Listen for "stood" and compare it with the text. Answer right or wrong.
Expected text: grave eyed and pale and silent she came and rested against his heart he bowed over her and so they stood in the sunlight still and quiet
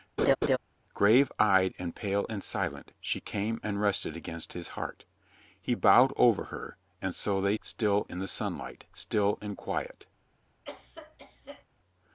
wrong